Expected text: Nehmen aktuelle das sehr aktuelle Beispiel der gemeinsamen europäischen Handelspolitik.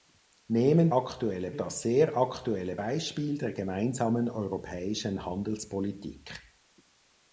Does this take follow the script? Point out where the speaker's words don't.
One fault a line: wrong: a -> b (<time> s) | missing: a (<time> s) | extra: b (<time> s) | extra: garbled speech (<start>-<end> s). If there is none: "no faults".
no faults